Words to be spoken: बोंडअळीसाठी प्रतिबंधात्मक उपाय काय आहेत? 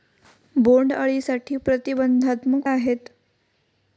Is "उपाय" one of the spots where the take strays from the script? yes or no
yes